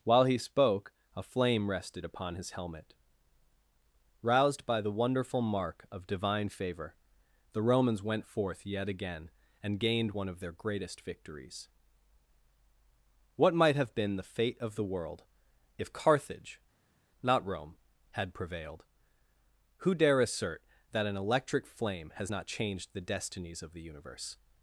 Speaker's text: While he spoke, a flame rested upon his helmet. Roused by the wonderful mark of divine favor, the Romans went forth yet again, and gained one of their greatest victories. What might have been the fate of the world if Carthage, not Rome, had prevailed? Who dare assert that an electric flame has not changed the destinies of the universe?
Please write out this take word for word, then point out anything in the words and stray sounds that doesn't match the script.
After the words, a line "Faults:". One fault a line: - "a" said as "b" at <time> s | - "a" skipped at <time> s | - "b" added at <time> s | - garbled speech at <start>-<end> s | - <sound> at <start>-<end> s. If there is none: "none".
While he spoke, a flame rested upon his helmet. Roused by the wonderful mark of divine favor, the Romans went forth yet again, and gained one of their greatest victories. What might have been the fate of the world if Carthage, not Rome, had prevailed? Who dare assert that an electric flame has not changed the destinies of the universe?
Faults:
none